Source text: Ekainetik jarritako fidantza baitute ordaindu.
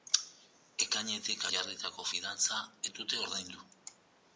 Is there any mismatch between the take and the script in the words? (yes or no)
no